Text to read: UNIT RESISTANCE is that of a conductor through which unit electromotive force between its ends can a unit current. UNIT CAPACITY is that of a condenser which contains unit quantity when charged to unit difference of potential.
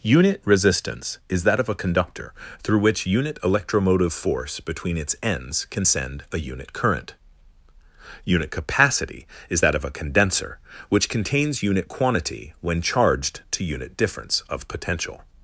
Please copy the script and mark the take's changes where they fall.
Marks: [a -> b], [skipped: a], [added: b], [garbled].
UNIT RESISTANCE is that of a conductor through which unit electromotive force between its ends can [added: send] a unit current. UNIT CAPACITY is that of a condenser which contains unit quantity when charged to unit difference of potential.